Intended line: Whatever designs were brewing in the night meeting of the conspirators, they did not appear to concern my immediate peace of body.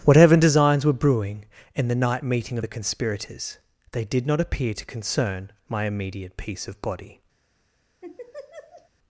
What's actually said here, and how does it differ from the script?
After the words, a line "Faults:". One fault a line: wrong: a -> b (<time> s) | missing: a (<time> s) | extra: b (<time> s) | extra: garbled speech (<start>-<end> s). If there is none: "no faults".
Whatever designs were brewing in the night meeting of the conspirators, they did not appear to concern my immediate peace of body.
Faults:
no faults